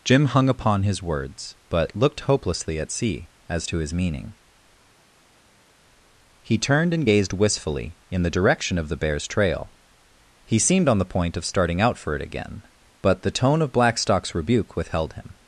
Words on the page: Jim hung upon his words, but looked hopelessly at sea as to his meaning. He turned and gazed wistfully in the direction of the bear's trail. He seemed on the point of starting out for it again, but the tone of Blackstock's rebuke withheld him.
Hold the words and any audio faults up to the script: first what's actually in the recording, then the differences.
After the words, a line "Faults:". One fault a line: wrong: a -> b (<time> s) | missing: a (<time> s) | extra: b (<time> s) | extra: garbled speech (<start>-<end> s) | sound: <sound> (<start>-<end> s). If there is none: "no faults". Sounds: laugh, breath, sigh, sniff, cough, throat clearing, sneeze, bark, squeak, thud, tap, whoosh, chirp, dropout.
Jim hung upon his words, but looked hopelessly at sea as to his meaning. He turned and gazed wistfully in the direction of the bear's trail. He seemed on the point of starting out for it again, but the tone of Blackstock's rebuke withheld him.
Faults:
no faults